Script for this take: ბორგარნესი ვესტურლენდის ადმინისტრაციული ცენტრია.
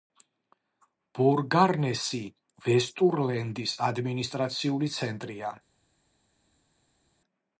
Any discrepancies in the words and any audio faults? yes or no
no